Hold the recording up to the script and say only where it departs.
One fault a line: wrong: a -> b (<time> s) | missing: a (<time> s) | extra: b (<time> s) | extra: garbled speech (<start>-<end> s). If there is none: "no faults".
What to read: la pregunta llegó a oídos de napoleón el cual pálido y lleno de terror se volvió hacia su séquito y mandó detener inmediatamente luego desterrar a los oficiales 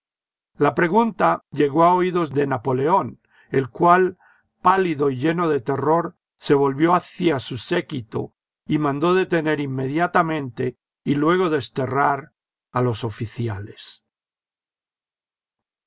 extra: y (11.0 s)